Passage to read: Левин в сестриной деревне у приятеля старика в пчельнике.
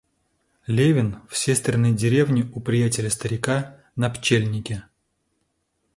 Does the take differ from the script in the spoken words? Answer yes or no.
yes